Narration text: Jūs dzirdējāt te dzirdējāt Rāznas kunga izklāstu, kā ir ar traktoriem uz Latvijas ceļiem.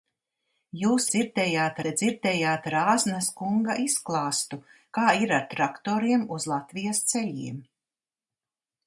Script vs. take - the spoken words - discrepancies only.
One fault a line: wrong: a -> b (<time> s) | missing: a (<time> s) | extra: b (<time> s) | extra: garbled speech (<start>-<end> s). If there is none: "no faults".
no faults